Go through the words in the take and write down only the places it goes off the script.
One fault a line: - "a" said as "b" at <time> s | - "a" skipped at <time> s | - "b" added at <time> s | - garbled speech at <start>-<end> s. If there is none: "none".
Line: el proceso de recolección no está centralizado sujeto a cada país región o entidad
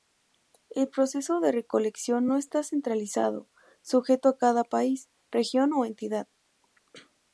none